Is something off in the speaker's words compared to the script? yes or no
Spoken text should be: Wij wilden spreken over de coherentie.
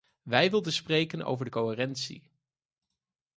no